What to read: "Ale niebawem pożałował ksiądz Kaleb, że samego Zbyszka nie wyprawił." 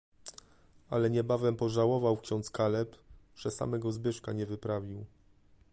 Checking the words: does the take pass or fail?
pass